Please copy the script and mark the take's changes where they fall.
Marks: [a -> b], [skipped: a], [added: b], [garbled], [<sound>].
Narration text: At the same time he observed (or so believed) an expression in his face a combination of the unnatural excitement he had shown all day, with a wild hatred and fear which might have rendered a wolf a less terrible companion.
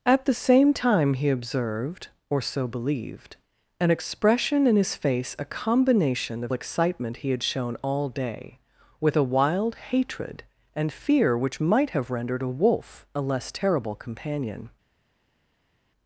At the same time he observed (or so believed) an expression in his face a combination of [skipped: the unnatural] excitement he had shown all day, with a wild hatred and fear which might have rendered a wolf a less terrible companion.